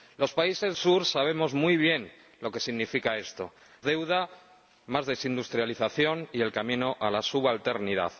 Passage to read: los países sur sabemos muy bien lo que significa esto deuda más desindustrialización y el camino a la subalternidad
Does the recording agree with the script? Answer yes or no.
yes